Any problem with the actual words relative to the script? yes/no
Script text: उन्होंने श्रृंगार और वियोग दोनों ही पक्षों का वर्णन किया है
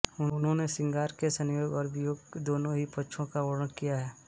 yes